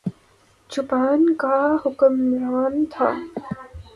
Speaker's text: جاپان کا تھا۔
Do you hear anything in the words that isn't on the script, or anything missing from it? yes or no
yes